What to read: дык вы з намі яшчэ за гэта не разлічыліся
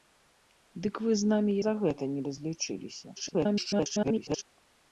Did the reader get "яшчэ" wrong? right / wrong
wrong